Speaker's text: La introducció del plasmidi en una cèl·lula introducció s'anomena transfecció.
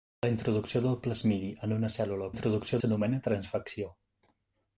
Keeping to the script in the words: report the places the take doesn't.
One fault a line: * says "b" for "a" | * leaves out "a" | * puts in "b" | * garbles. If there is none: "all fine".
all fine